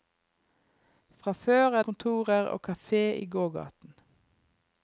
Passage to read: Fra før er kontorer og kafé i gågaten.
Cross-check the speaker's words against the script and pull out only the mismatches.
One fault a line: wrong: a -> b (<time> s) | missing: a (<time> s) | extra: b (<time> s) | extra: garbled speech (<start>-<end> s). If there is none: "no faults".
no faults